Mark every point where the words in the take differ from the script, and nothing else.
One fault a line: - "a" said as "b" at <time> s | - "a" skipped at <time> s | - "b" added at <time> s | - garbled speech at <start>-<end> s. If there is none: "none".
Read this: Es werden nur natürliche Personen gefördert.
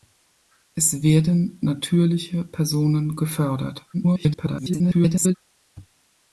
- "nur" skipped at 1.6 s
- garbled speech at 3.9-5.3 s